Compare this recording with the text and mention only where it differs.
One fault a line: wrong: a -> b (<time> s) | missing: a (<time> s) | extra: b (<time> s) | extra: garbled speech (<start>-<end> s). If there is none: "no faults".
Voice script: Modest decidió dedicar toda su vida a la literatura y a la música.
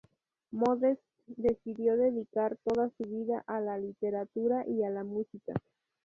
no faults